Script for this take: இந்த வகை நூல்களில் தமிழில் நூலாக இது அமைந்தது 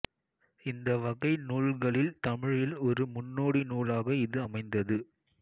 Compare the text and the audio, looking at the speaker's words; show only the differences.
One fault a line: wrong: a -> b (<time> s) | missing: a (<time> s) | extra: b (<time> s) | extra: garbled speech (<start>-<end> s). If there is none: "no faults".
extra: ஒரு முன்னோடி (2.8 s)